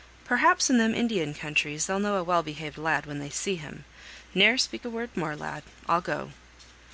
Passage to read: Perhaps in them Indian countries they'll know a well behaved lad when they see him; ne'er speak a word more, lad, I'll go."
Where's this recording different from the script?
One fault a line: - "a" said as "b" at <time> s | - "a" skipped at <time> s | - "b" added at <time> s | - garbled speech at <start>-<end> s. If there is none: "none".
none